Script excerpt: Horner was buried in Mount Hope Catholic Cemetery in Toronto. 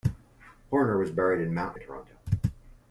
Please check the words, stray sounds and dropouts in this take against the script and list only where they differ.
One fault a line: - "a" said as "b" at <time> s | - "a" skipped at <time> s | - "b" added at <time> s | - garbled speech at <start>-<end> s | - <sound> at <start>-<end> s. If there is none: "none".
- "Hope Catholic Cemetery" skipped at 1.8 s